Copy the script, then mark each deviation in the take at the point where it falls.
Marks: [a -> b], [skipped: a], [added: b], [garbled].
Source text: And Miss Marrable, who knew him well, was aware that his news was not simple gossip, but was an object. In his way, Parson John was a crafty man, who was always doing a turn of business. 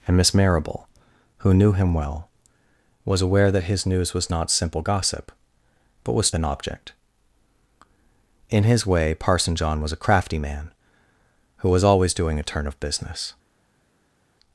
And Miss Marrable, who knew him well, was aware that his news was not simple gossip, but was an object. In his way, Parson John was a crafty man, who was always doing a turn of business.